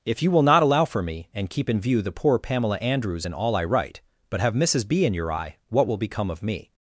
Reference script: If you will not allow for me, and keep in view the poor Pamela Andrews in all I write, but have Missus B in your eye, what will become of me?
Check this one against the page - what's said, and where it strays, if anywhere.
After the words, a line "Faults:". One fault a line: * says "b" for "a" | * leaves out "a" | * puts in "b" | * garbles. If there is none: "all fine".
If you will not allow for me, and keep in view the poor Pamela Andrews in all I write, but have Missus B in your eye, what will become of me?
Faults:
all fine